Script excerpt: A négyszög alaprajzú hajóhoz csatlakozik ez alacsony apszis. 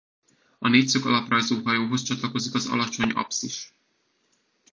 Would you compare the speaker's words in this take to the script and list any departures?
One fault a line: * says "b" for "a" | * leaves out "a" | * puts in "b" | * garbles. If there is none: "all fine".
* says "az" for "ez"